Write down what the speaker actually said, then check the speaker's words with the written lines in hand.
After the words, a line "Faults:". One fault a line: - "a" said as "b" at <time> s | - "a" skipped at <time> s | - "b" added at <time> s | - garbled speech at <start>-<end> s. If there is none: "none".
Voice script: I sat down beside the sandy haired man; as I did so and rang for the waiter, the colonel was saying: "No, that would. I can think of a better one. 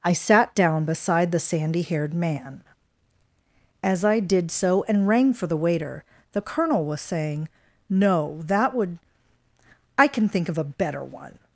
I sat down beside the sandy haired man; as I did so and rang for the waiter, the colonel was saying: "No, that would. I can think of a better one.
Faults:
none